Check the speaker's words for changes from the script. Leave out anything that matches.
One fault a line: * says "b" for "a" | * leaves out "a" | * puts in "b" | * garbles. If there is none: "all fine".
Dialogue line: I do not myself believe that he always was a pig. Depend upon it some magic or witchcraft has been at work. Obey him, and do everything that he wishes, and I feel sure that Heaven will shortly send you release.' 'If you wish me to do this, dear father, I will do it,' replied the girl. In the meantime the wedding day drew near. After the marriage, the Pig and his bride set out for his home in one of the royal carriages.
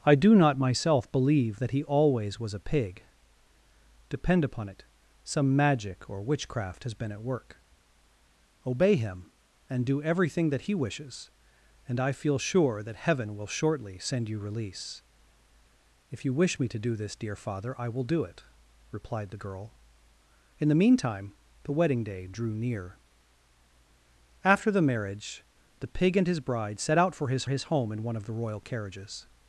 * puts in "his"